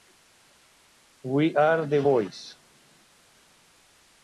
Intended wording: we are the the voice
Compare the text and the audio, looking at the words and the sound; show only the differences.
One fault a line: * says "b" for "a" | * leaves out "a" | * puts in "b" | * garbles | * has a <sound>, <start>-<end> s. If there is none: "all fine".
* leaves out "the"